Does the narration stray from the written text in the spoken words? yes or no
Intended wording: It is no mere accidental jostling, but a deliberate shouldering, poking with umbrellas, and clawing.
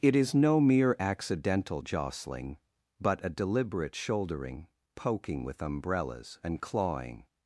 no